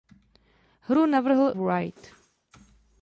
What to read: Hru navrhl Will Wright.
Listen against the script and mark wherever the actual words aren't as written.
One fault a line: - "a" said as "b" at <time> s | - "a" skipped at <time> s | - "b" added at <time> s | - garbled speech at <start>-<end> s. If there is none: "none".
- "Will" skipped at 1.5 s